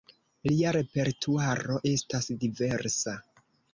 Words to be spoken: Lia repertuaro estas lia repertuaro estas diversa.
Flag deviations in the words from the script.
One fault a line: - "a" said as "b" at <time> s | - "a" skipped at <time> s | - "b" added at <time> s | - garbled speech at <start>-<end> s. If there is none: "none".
- "lia repertuaro estas" skipped at 2.3 s